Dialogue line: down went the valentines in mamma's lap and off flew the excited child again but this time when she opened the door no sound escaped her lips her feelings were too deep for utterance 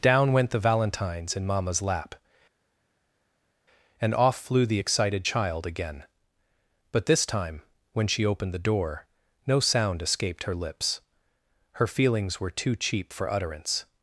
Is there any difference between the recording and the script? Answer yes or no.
yes